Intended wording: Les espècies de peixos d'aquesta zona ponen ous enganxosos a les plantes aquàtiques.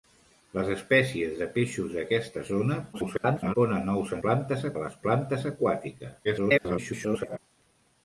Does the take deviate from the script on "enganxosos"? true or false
true